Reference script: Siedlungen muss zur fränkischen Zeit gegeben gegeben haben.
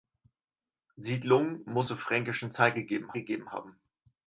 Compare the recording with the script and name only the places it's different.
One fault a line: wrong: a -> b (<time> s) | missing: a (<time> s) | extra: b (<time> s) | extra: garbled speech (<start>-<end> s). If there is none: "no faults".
no faults